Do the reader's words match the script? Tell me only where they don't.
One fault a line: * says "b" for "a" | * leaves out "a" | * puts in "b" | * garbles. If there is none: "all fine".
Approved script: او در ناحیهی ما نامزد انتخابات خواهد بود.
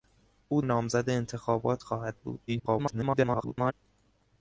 * leaves out "در ناحیهی ما"
* garbles